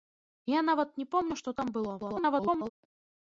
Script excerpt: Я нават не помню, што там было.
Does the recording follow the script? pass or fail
fail